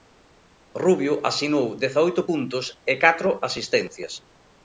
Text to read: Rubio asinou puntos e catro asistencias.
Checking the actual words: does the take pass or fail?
fail